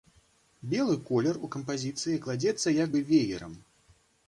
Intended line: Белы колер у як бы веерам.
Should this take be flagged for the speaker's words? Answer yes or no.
yes